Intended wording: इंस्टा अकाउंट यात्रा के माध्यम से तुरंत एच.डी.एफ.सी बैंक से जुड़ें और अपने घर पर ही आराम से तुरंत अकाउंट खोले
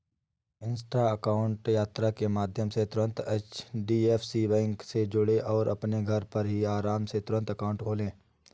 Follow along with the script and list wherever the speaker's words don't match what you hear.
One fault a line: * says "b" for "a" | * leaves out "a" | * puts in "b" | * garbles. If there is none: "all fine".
all fine